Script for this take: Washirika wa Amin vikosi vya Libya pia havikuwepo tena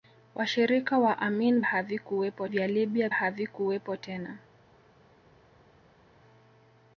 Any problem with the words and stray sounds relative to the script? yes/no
yes